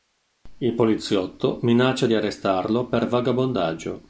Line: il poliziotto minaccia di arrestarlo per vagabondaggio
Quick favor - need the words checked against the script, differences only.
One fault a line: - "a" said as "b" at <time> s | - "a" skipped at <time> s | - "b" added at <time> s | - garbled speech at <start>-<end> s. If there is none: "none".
none